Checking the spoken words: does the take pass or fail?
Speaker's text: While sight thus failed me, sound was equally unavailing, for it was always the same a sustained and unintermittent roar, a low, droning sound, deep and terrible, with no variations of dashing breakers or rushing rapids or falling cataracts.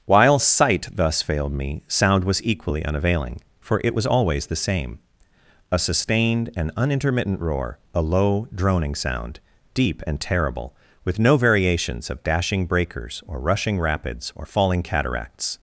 pass